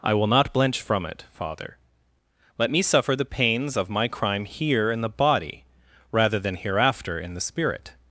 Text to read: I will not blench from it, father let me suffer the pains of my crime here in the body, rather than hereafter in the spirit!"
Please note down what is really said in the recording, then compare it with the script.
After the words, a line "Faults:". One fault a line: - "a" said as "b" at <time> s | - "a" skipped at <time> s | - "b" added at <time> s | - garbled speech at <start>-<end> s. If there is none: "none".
I will not blench from it, father let me suffer the pains of my crime here in the body, rather than hereafter in the spirit!"
Faults:
none